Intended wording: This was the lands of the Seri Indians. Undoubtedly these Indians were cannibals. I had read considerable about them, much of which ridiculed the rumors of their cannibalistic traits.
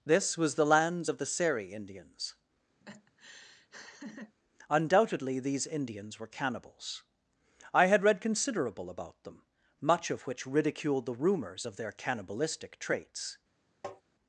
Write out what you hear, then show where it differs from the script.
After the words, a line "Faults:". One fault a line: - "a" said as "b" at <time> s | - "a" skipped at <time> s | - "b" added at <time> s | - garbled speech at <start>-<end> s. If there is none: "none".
This was the lands of the Seri Indians. Undoubtedly these Indians were cannibals. I had read considerable about them, much of which ridiculed the rumors of their cannibalistic traits.
Faults:
none